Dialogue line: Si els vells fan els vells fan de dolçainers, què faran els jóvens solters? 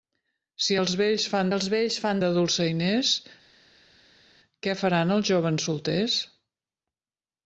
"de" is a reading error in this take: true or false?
false